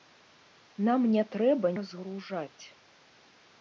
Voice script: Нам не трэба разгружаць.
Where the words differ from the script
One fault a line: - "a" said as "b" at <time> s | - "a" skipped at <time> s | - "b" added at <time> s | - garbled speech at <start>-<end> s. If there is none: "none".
none